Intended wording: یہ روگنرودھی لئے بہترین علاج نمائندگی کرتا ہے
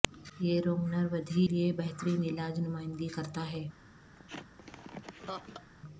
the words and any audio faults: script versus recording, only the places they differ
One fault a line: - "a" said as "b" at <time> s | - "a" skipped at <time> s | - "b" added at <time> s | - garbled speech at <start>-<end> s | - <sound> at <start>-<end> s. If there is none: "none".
- laugh at 4.2-5.7 s